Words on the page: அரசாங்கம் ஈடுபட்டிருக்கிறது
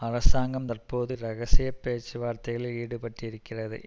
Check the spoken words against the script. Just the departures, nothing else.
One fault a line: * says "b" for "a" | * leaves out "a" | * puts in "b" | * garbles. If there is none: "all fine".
* puts in "தற்போது இரகசிய பேச்சுவார்த்தைகளில்"